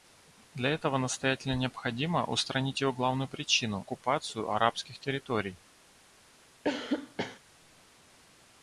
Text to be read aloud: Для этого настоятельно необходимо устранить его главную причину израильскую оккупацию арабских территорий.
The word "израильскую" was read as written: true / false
false